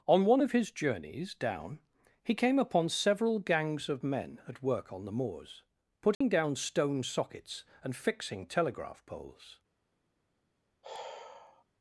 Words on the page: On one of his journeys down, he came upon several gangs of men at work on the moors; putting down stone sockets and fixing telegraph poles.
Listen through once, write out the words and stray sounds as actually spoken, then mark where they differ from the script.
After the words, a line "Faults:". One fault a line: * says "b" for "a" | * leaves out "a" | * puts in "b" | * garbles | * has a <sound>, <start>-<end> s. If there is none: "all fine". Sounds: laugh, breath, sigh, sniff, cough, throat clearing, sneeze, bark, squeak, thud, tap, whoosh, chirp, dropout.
On one of his journeys down, he came upon several gangs of men at work on the moors; putting down stone sockets and fixing telegraph poles.
Faults:
* has a dropout, 6.1-6.2 s
* has a sigh, 10.8-11.6 s